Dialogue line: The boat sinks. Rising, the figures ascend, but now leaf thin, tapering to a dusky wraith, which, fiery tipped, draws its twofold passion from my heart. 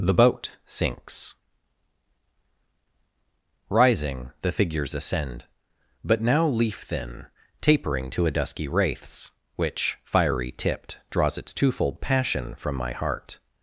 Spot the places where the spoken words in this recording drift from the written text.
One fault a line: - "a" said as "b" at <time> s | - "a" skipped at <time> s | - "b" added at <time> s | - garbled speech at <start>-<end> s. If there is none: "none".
- "wraith" said as "wraiths" at 8.7 s